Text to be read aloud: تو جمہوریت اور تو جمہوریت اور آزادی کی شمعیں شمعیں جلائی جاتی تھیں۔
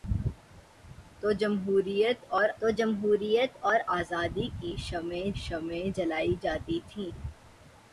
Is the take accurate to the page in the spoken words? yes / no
yes